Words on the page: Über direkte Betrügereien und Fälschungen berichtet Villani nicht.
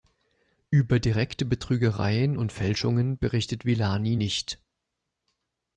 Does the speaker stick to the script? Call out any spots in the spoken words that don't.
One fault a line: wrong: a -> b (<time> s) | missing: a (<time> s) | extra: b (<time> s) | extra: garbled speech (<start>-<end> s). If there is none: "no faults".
no faults